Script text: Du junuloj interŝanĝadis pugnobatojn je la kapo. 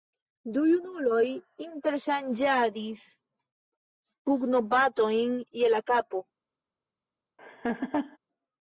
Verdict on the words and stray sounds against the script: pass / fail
fail